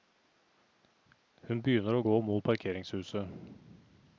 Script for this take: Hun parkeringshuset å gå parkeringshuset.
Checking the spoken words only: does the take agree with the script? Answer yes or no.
no